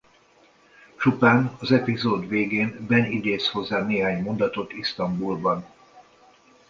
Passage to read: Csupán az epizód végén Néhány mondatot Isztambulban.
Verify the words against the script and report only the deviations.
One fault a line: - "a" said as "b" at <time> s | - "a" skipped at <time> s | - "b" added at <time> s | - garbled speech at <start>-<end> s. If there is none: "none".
- "Ben idéz hozzá" added at 2.9 s